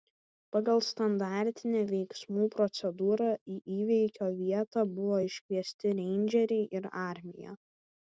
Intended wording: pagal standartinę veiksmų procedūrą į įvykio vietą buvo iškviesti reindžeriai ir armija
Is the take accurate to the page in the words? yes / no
yes